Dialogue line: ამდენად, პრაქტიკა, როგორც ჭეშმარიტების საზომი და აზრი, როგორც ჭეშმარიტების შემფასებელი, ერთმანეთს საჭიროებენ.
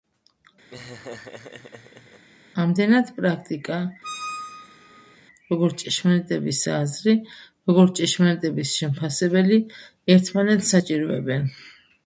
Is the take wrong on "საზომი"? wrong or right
wrong